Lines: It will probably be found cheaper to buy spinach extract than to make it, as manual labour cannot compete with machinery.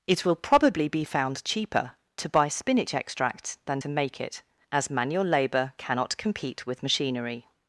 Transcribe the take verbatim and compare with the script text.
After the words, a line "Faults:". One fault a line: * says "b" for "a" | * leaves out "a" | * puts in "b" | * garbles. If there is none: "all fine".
It will probably be found cheaper to buy spinach extract than to make it, as manual labour cannot compete with machinery.
Faults:
all fine